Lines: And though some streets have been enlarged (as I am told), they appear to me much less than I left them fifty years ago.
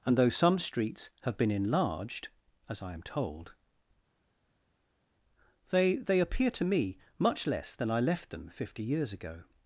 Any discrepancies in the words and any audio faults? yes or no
yes